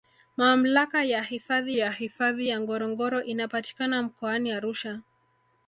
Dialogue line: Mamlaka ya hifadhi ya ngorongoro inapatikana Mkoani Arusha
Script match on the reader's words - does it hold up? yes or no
no